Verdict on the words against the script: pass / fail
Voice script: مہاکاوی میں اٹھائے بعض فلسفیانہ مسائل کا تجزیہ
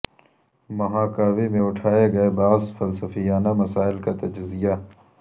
fail